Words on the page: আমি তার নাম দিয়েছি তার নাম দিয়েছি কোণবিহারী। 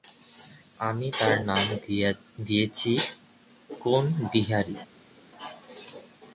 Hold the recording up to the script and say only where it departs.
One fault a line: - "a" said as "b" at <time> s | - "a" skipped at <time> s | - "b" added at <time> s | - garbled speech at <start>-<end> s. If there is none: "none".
- "তার নাম দিয়েছি" skipped at 2.9 s